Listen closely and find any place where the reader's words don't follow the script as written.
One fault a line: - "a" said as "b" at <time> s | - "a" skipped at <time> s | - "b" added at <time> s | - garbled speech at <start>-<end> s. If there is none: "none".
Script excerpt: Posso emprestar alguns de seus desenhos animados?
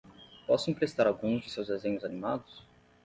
none